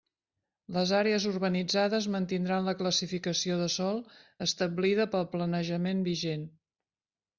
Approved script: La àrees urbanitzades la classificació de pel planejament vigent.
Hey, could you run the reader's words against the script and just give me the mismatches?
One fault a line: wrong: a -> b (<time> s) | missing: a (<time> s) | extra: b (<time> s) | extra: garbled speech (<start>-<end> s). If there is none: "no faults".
wrong: La -> Les (0.8 s)
extra: mantindran (2.1 s)
extra: sòl establida (3.8 s)